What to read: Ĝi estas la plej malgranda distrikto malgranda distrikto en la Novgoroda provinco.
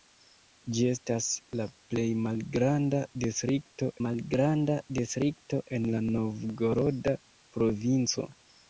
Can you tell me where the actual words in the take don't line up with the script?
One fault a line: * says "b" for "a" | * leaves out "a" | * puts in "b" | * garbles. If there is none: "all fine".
all fine